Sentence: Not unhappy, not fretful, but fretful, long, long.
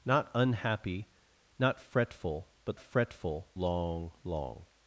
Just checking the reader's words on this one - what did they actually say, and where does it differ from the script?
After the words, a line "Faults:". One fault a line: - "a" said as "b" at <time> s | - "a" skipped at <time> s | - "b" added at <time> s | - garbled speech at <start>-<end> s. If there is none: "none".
Not unhappy, not fretful, but fretful, long, long.
Faults:
none